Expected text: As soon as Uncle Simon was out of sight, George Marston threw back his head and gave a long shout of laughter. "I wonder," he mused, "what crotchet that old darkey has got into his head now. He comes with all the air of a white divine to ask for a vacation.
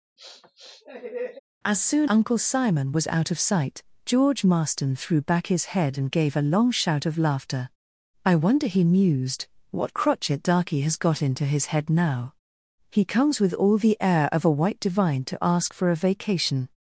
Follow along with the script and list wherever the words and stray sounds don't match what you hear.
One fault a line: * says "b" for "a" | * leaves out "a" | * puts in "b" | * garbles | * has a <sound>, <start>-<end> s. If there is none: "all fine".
* has a sniff, 0.2-1.4 s
* leaves out "as"
* leaves out "that old"